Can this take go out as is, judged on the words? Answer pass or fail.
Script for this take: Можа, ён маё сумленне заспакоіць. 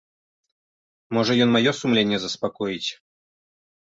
pass